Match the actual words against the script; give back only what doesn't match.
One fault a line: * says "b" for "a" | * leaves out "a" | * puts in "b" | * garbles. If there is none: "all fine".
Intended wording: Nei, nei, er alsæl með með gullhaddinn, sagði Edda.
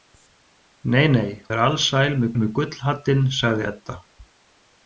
all fine